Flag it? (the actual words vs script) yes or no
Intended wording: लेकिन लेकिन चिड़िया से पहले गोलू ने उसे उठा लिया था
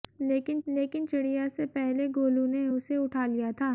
no